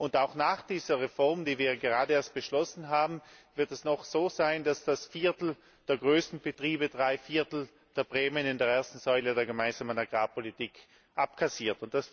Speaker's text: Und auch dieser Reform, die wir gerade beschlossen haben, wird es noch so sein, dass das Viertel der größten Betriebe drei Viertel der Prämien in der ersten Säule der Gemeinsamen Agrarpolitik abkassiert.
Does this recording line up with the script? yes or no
no